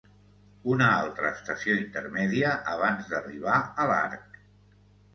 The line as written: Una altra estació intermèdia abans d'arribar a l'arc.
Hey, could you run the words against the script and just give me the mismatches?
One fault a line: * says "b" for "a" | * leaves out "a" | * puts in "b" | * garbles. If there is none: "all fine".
all fine